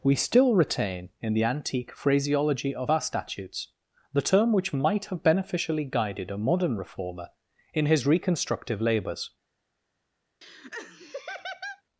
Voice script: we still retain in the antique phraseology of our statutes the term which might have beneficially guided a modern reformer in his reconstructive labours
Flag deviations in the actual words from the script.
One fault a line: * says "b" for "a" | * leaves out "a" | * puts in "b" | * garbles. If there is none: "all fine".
all fine